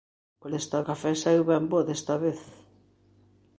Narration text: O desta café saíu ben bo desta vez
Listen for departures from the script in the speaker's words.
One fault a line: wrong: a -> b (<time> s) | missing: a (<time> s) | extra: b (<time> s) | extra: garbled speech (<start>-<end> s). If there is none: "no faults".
no faults